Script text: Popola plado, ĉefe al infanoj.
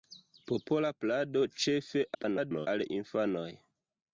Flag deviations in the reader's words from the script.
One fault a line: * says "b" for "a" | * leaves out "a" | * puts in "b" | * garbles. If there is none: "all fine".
* garbles